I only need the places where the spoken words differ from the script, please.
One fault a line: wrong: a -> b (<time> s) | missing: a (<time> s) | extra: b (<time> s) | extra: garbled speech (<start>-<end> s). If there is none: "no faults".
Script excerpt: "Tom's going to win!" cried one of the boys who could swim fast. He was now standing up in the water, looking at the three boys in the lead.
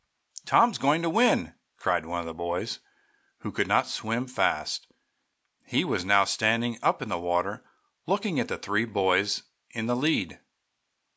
extra: not (3.7 s)